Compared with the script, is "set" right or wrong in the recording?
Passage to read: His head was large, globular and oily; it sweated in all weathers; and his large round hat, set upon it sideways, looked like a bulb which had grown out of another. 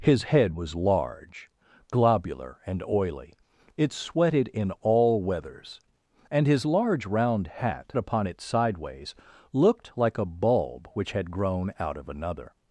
wrong